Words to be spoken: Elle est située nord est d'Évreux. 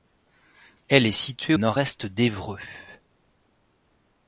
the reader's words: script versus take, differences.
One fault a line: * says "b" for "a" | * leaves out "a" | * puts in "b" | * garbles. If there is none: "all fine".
all fine